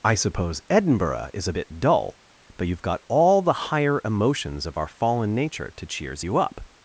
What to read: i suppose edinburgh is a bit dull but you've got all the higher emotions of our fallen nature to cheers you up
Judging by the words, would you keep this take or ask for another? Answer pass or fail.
pass